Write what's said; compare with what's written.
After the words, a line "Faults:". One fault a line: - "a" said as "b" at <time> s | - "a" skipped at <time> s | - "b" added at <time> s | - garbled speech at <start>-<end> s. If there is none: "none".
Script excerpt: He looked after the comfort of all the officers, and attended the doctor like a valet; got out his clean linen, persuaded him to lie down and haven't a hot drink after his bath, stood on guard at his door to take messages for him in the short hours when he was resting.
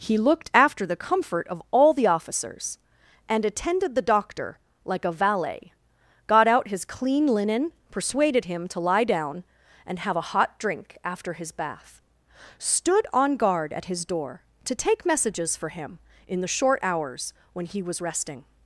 He looked after the comfort of all the officers, and attended the doctor like a valet; got out his clean linen, persuaded him to lie down and have a hot drink after his bath, stood on guard at his door to take messages for him in the short hours when he was resting.
Faults:
- "haven't" said as "have" at 10.0 s